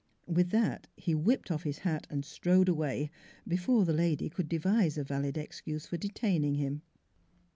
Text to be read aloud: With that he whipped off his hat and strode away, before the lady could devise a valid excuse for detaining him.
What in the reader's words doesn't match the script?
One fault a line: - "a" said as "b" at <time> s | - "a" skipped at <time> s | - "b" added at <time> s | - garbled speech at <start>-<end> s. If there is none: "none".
none